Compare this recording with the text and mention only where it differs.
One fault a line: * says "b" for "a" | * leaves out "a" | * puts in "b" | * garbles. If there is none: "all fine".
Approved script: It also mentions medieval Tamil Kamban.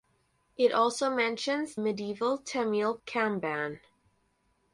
all fine